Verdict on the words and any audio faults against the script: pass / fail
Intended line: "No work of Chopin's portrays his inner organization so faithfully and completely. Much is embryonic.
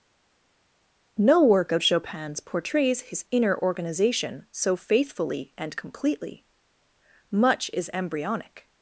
pass